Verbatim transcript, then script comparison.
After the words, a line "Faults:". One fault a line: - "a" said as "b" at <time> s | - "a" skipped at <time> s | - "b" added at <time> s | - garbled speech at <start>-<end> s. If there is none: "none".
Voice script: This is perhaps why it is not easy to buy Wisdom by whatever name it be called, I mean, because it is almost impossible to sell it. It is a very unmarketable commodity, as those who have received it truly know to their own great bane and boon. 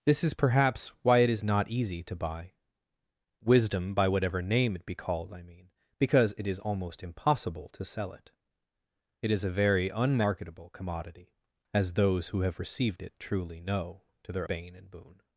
This is perhaps why it is not easy to buy Wisdom by whatever name it be called, I mean, because it is almost impossible to sell it. It is a very unmarketable commodity, as those who have received it truly know to their bane and boon.
Faults:
- "own great" skipped at 14.5 s